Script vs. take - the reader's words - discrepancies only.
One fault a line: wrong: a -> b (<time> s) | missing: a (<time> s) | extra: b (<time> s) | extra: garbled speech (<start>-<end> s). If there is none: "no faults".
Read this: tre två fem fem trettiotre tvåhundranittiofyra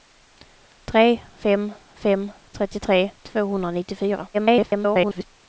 missing: två (1.2 s)
extra: garbled speech (4.3-5.2 s)